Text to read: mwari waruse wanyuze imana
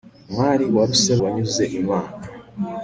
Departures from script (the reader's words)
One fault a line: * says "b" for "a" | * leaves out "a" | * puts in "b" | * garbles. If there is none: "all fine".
all fine